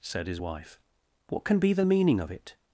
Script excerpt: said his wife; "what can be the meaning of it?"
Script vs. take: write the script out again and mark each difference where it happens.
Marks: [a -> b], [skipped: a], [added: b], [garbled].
said his wife; "what can be the meaning of it?"